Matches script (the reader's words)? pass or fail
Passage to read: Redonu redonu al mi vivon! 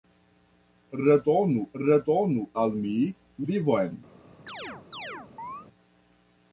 pass